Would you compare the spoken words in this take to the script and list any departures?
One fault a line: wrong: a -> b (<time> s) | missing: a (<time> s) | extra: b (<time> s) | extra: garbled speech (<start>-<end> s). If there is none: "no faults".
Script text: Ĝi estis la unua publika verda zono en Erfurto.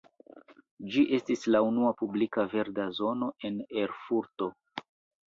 no faults